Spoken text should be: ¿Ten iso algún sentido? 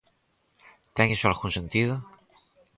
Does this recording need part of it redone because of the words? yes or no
no